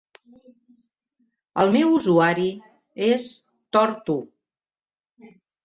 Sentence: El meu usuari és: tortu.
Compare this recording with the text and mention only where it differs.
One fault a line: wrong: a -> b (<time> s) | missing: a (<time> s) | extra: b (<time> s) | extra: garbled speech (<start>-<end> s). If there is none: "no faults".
no faults